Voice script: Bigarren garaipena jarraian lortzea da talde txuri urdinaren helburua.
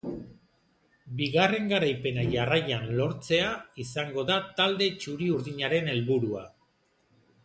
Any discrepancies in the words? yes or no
yes